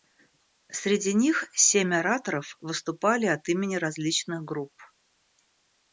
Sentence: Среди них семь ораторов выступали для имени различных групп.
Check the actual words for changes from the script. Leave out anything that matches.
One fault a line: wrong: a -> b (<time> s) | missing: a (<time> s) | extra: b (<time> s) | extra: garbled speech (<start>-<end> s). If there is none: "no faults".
wrong: для -> от (3.3 s)